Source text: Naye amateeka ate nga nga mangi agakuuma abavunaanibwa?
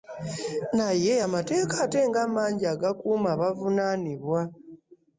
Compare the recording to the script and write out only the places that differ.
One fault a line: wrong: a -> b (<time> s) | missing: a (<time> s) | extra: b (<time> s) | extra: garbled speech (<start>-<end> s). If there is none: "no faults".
missing: nga (2.2 s)